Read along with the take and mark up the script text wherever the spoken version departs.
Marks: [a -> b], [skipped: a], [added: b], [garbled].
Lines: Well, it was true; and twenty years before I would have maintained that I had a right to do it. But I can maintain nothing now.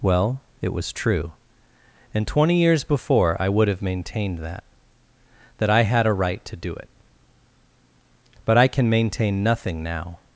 Well, it was true; and twenty years before I would have maintained that [added: that] I had a right to do it. But I can maintain nothing now.